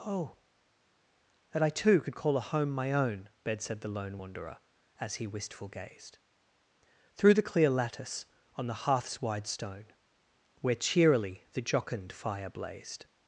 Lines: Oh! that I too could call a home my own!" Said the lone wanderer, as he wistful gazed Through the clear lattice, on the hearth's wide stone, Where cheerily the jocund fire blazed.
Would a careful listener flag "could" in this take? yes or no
no